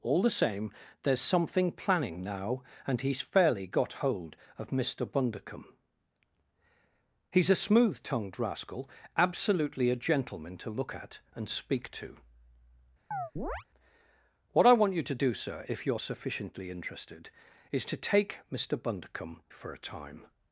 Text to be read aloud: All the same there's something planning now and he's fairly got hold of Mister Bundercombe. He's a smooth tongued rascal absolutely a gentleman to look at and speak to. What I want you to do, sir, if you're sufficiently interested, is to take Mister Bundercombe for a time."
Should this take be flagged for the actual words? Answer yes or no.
no